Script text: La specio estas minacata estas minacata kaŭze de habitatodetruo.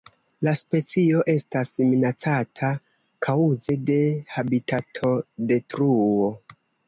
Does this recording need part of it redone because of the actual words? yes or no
yes